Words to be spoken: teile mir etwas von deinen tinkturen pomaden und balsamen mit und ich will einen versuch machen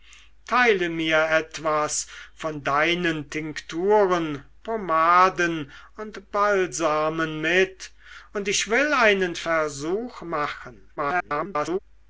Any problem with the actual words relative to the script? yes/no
yes